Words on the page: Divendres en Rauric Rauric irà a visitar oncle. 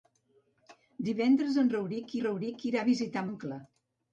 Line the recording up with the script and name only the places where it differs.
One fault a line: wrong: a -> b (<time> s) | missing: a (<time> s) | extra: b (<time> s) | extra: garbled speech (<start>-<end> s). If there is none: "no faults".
no faults